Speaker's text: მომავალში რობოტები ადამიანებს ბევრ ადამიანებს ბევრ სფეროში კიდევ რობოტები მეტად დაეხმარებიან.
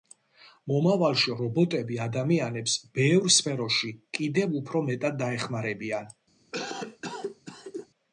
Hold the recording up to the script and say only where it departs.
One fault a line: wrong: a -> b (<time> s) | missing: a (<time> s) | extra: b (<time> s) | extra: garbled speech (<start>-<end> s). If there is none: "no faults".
missing: ადამიანებს ბევრ (3.3 s)
wrong: რობოტები -> უფრო (4.6 s)